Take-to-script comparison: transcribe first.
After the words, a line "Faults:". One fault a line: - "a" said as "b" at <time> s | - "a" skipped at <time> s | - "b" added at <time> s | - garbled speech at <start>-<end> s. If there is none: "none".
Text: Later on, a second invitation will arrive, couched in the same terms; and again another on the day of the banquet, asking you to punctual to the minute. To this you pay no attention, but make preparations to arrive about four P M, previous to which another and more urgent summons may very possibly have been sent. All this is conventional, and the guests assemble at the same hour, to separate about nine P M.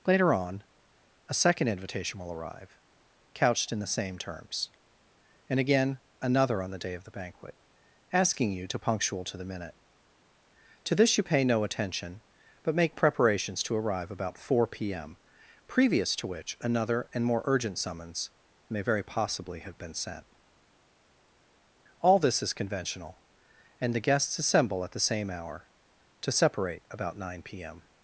Later on, a second invitation will arrive, couched in the same terms; and again another on the day of the banquet, asking you to punctual to the minute. To this you pay no attention, but make preparations to arrive about four P M, previous to which another and more urgent summons may very possibly have been sent. All this is conventional, and the guests assemble at the same hour, to separate about nine P M.
Faults:
none